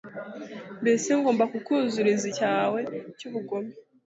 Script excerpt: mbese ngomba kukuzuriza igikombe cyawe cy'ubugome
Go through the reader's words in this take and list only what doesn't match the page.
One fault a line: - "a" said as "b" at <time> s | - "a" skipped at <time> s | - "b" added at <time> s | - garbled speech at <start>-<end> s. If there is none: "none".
- "igikombe" skipped at 2.2 s